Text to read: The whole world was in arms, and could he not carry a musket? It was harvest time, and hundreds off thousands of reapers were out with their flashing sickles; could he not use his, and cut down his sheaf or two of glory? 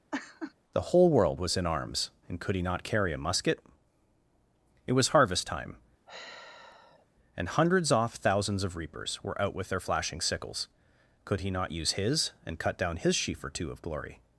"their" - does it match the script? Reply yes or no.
yes